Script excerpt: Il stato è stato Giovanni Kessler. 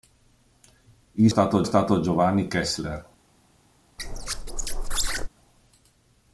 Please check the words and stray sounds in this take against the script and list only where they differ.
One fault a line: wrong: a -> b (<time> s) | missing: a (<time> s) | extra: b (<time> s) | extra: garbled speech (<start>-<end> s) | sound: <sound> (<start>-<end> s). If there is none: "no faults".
sound: squeak (4.0-5.3 s)